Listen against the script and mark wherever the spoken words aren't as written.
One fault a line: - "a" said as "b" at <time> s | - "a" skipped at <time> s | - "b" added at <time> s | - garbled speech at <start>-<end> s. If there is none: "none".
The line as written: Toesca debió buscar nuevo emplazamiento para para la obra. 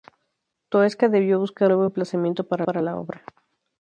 none